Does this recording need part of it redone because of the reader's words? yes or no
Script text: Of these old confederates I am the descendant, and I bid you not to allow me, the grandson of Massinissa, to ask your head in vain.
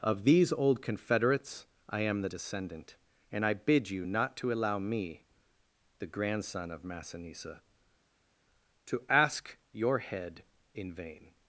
no